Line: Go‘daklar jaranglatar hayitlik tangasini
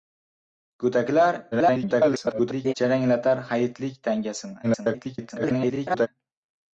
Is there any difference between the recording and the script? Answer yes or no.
yes